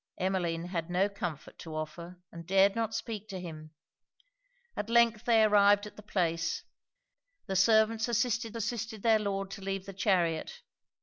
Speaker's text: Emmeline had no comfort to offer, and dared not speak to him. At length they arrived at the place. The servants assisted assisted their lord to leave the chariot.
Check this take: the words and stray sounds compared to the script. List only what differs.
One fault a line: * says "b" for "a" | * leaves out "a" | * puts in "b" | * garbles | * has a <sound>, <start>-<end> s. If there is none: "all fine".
all fine